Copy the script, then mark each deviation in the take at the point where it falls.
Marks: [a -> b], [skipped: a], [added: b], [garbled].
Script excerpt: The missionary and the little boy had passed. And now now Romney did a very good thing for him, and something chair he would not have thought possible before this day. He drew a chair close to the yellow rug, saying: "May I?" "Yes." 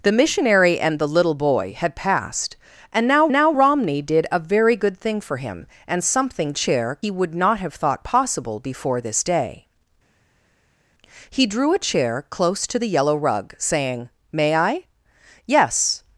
The missionary and the little boy had passed. And now now Romney did a very good thing for him, and something chair he would not have thought possible before this day. He drew a chair close to the yellow rug, saying: "May I?" "Yes."